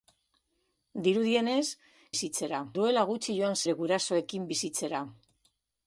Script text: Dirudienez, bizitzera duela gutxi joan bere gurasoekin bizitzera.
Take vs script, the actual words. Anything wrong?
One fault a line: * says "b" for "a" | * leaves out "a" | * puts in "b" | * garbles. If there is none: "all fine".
all fine